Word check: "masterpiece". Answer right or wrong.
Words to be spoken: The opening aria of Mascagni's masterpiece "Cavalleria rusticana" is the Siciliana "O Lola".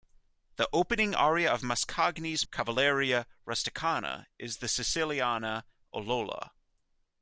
wrong